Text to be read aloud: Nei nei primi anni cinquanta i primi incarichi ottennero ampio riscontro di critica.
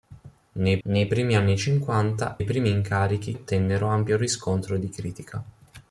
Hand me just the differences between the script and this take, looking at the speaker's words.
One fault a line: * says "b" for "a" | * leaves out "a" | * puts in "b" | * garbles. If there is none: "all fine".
all fine